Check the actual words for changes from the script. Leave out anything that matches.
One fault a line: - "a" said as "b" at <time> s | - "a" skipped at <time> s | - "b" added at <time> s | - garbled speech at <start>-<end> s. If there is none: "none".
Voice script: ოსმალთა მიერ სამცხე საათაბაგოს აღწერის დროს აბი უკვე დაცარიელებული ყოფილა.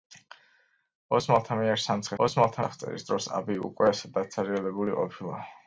- "საათაბაგოს" said as "ოსმალთა" at 2.2 s